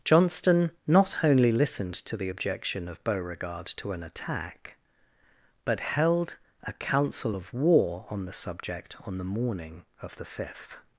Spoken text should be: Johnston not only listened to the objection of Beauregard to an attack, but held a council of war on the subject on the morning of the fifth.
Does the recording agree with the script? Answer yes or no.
yes